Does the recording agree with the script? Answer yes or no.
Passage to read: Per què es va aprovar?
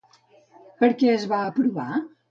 yes